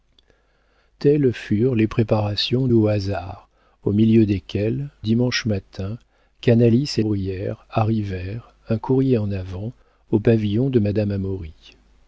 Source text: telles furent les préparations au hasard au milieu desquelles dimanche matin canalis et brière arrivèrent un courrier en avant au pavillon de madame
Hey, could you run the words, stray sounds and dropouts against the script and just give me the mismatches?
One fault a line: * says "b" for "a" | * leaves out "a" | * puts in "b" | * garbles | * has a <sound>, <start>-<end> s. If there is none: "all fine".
all fine